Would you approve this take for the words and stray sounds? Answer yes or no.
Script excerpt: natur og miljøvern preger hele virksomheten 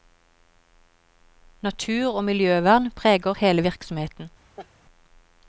no